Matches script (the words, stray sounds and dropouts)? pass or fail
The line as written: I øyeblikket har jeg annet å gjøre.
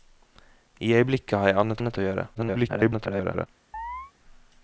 fail